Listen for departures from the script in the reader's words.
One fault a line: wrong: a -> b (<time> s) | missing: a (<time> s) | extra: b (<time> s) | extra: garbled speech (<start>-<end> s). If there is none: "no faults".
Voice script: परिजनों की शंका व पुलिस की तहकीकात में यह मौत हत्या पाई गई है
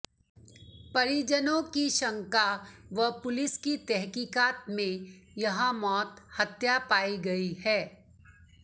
no faults